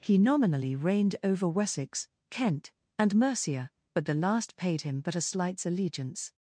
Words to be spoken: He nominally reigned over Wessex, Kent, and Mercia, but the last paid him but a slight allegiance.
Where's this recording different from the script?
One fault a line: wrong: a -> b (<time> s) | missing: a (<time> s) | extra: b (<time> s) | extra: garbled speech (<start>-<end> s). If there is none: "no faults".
wrong: slight -> slights (5.2 s)